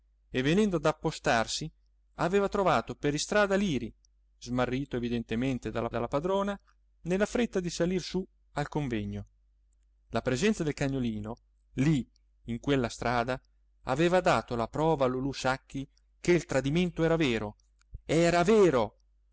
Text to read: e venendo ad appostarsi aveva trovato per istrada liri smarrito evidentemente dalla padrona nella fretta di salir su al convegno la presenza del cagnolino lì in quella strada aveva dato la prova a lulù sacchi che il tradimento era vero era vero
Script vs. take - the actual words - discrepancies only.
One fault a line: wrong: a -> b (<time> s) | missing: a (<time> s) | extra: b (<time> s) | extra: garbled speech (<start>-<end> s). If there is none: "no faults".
extra: dalla (5.9 s)